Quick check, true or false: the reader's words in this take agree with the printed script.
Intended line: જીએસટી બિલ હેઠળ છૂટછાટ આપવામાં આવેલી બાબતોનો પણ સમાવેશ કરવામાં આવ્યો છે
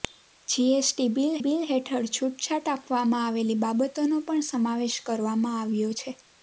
false